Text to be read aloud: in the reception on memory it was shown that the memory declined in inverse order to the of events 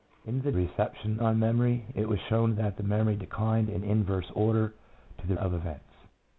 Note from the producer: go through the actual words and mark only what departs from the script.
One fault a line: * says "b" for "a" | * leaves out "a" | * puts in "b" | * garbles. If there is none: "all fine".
all fine